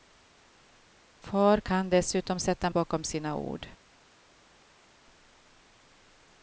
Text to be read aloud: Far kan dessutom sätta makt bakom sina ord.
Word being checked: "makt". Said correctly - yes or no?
no